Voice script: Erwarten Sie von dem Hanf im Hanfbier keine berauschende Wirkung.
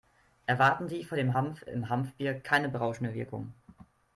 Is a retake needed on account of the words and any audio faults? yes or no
no